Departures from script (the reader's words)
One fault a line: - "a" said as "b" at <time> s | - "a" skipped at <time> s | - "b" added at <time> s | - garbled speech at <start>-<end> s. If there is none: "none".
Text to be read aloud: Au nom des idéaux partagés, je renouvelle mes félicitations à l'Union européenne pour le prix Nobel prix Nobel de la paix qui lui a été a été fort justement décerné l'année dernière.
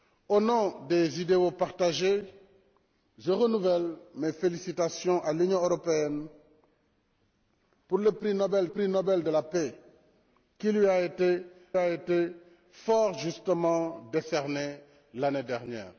none